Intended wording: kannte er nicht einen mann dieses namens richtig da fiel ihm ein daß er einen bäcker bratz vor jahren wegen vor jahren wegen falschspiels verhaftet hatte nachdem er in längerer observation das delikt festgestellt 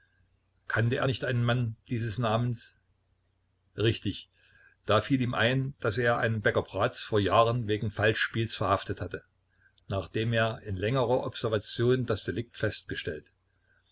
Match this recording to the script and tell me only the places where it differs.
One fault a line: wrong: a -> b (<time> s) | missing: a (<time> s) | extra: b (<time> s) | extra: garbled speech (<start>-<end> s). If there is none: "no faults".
missing: vor jahren wegen (7.9 s)